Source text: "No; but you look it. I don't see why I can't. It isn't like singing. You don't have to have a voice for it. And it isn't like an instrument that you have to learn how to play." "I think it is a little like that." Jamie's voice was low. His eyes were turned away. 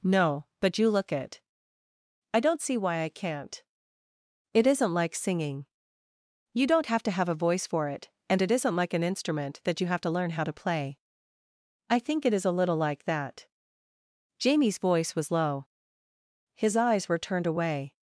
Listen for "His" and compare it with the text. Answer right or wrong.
right